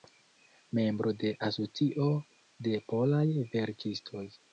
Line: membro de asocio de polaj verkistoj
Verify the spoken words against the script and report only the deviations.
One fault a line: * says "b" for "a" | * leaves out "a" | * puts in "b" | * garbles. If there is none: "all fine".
all fine